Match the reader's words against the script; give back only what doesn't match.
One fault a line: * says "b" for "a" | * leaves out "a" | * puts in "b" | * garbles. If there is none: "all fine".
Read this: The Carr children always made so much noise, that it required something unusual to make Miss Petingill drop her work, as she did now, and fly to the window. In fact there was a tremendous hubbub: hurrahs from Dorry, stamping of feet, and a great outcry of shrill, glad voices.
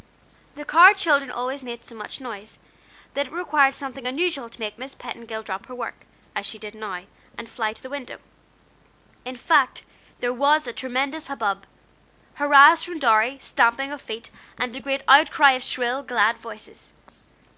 all fine